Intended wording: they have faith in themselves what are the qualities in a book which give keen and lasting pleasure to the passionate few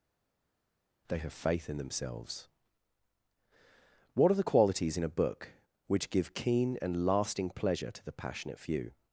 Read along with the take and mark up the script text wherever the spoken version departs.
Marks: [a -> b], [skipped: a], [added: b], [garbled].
they have faith in themselves what are the qualities in a book which give keen and lasting pleasure to the passionate few